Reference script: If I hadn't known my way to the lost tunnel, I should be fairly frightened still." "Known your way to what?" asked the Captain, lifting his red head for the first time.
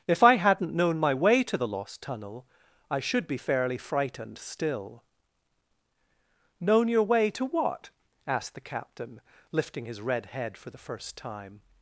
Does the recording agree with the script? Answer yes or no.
yes